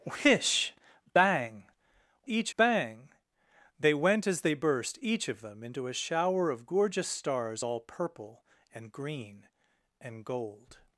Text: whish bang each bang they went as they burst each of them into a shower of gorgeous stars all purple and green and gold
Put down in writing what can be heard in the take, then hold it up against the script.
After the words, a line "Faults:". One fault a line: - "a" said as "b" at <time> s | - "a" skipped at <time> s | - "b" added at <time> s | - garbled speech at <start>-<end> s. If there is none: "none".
whish bang each bang they went as they burst each of them into a shower of gorgeous stars all purple and green and gold
Faults:
none